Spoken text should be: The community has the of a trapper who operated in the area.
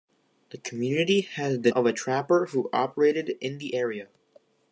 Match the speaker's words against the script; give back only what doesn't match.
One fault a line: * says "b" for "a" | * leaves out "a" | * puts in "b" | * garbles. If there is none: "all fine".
all fine